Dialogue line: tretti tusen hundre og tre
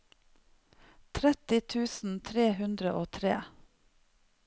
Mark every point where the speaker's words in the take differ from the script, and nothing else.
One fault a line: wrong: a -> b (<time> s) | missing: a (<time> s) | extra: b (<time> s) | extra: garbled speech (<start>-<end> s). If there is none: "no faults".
extra: tre (2.3 s)